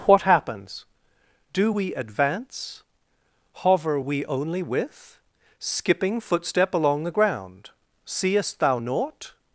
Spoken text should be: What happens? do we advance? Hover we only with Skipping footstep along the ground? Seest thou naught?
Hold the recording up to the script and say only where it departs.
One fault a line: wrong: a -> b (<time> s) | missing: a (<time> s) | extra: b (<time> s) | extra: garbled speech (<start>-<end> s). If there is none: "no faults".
no faults